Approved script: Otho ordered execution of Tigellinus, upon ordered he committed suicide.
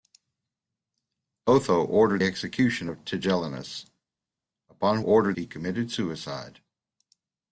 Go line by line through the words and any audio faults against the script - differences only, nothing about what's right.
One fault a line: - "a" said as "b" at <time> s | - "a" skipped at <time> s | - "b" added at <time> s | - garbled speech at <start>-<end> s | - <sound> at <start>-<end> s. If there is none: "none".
none